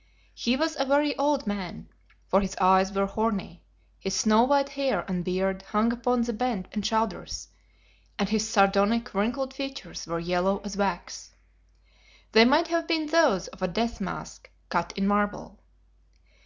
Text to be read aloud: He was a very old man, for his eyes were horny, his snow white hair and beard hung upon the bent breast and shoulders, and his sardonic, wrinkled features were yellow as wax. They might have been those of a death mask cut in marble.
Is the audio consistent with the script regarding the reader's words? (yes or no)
no